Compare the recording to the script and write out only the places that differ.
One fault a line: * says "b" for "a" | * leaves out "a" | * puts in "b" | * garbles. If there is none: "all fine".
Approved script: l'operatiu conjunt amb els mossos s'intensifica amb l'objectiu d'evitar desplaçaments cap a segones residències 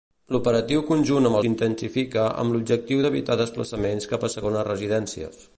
* leaves out "els mossos"